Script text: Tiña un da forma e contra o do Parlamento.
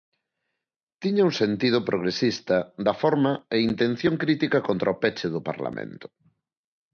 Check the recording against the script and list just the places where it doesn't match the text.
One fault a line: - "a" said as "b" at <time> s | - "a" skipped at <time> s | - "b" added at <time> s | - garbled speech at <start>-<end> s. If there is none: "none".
- "sentido progresista" added at 1.4 s
- "intención crítica" added at 3.7 s
- "peche" added at 5.0 s